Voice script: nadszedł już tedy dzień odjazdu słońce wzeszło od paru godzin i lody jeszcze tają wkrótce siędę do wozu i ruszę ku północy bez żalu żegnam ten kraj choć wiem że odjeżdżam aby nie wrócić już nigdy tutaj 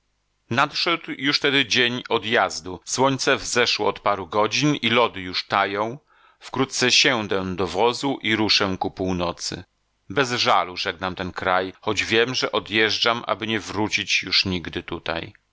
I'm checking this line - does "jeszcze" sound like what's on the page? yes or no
no